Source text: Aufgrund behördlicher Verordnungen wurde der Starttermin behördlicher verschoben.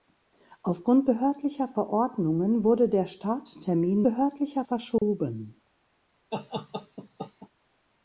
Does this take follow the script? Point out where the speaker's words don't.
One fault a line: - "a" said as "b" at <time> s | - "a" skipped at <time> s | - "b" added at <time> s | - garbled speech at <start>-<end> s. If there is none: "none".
none